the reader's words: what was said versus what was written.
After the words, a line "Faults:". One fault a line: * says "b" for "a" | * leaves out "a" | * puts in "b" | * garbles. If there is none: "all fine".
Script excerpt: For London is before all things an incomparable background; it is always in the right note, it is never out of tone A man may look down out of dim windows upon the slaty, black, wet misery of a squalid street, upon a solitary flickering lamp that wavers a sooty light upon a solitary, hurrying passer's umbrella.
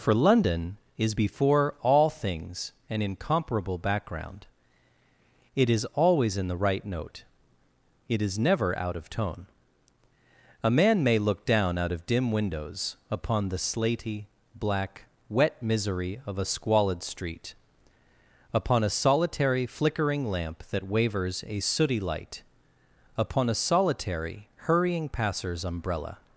For London is before all things an incomparable background; it is always in the right note, it is never out of tone A man may look down out of dim windows upon the slaty, black, wet misery of a squalid street, upon a solitary flickering lamp that wavers a sooty light upon a solitary, hurrying passer's umbrella.
Faults:
all fine